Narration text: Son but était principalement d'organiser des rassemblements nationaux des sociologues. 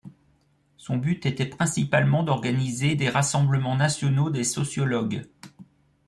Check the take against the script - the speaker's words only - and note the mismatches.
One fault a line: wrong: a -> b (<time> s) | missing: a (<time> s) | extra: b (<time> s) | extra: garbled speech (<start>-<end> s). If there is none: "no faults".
no faults